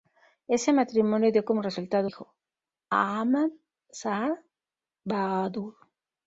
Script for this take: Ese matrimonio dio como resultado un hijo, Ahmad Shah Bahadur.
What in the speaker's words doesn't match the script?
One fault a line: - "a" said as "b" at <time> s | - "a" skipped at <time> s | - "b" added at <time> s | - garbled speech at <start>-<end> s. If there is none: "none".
- "un" skipped at 2.1 s